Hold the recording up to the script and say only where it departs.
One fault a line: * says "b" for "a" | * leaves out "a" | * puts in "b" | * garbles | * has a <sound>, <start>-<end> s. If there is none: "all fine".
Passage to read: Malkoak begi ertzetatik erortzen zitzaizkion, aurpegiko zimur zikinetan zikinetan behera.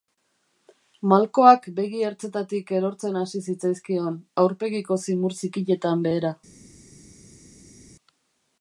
* puts in "hasi"
* leaves out "zikinetan"